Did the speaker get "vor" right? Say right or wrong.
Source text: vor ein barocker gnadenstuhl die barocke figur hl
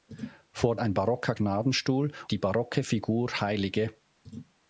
right